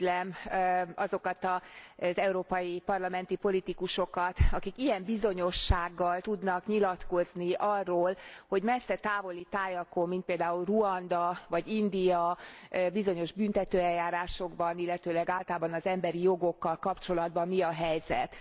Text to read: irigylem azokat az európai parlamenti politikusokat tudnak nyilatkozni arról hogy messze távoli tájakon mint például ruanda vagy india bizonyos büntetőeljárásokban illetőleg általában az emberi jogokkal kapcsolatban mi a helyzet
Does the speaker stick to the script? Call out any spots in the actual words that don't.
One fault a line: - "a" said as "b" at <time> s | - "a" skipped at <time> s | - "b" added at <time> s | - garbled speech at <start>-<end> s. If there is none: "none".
- "akik ilyen bizonyossággal" added at 4.5 s